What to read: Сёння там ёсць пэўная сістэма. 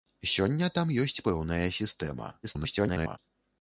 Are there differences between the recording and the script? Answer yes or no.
yes